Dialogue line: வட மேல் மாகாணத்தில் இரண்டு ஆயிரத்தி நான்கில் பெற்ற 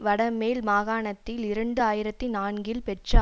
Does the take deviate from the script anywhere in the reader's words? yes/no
no